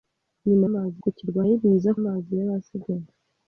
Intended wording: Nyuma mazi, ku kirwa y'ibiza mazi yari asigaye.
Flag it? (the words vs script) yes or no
no